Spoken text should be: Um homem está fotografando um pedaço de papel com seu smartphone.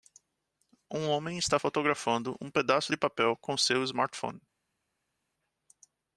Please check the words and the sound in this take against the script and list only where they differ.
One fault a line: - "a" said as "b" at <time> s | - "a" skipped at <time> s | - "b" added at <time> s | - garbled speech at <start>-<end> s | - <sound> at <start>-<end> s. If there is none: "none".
none